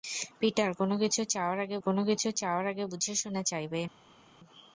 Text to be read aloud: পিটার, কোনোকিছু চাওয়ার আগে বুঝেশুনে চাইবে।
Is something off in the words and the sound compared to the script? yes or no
yes